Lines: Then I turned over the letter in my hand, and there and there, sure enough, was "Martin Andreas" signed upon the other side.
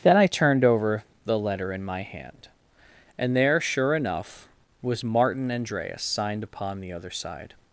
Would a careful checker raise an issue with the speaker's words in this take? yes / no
yes